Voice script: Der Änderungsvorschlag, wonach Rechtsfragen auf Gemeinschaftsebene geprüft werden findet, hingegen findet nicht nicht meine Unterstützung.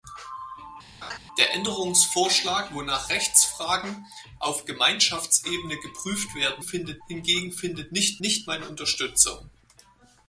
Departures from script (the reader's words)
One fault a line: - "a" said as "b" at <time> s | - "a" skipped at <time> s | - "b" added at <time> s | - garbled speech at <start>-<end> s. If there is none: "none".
none